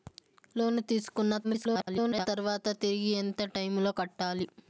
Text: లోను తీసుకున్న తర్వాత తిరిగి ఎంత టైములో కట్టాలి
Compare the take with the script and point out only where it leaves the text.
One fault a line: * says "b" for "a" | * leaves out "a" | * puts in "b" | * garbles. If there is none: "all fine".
* garbles